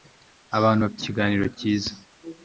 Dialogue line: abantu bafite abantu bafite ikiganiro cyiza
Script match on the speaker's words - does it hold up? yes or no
no